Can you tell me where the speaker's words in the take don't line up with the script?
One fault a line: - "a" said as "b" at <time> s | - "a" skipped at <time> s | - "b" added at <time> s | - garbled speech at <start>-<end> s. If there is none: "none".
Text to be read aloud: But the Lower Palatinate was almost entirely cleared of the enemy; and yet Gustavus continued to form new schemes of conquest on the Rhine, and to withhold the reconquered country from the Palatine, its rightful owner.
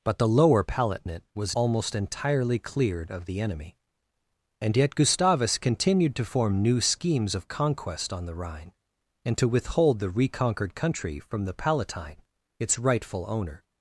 none